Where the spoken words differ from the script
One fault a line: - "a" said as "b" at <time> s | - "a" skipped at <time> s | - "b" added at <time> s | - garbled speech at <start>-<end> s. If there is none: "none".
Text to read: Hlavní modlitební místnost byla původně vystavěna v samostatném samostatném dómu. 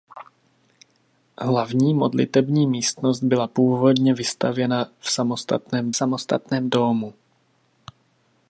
none